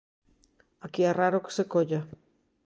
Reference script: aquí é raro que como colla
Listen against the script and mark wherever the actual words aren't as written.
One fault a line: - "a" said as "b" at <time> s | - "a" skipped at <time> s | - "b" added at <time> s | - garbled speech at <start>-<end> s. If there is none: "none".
- "como" said as "se" at 1.5 s